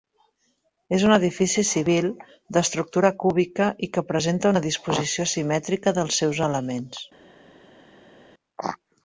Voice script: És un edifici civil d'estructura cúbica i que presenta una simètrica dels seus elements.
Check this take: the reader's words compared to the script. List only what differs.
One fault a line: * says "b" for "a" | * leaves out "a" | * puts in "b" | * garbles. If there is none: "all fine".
* puts in "disposició"